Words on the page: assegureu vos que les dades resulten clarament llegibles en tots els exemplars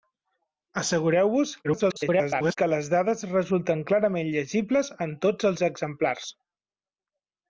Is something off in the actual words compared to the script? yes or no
yes